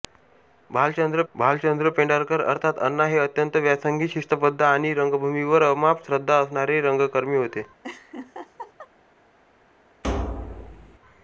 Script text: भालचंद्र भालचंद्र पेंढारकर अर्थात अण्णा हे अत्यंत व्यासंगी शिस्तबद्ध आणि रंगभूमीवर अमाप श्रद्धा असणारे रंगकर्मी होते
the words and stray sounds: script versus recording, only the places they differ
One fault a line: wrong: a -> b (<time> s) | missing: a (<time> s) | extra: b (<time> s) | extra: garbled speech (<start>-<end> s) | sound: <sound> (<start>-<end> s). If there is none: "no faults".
sound: laugh (7.8-8.9 s)
sound: thud (10.0-11.0 s)